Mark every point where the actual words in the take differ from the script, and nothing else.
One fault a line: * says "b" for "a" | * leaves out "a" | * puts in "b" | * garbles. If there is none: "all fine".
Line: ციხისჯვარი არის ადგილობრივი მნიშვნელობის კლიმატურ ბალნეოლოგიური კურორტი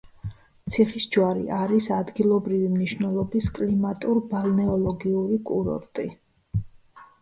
all fine